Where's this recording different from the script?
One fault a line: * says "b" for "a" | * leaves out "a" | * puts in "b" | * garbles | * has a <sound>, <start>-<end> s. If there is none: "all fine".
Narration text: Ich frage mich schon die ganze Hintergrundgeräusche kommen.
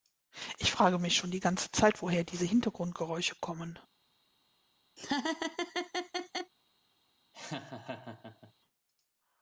* puts in "Zeit woher diese"
* has a laugh, 5.0-6.5 s
* has a laugh, 7.3-8.5 s